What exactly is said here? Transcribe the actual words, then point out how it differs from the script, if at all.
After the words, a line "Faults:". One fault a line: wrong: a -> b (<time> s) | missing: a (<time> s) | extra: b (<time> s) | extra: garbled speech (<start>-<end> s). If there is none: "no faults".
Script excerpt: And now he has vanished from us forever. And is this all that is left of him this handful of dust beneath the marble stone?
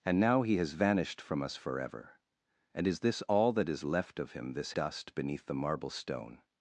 And now he has vanished from us forever. And is this all that is left of him this dust beneath the marble stone?
Faults:
missing: handful of (4.7 s)